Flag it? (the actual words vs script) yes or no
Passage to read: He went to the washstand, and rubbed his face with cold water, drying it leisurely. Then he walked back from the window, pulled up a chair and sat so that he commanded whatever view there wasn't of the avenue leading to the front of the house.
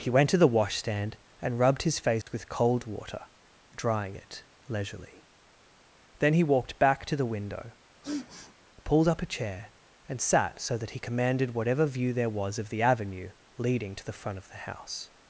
yes